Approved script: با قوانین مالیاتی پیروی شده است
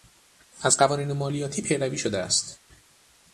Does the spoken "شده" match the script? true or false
true